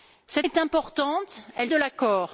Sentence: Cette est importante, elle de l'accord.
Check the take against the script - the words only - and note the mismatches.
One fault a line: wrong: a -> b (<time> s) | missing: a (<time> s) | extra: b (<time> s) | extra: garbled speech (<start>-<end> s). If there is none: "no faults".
no faults